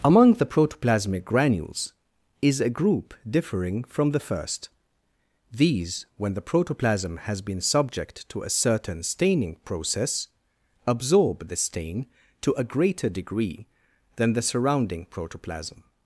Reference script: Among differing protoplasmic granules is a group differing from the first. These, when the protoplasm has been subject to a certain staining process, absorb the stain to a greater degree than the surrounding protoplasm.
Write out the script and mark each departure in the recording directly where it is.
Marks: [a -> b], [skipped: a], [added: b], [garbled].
Among [differing -> the] protoplasmic granules is a group differing from the first. These, when the protoplasm has been subject to a certain staining process, absorb the stain to a greater degree than the surrounding protoplasm.